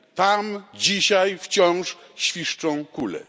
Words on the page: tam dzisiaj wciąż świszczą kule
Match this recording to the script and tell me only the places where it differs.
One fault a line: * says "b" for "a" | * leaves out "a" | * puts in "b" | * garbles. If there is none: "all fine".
all fine